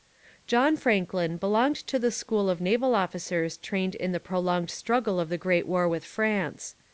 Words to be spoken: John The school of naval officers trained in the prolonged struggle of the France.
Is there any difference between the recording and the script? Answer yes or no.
yes